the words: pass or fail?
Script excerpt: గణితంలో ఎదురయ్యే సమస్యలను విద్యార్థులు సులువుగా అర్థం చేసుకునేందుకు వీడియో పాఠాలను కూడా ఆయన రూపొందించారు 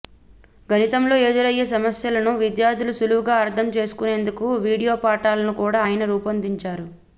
pass